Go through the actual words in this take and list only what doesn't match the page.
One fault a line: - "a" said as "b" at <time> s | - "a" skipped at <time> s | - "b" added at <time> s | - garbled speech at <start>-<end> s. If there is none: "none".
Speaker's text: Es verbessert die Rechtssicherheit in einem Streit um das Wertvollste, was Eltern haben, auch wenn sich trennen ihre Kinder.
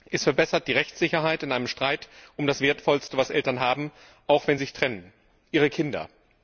none